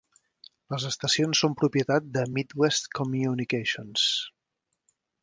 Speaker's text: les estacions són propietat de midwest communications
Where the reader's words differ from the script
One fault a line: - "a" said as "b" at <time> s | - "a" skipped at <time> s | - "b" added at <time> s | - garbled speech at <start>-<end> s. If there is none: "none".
none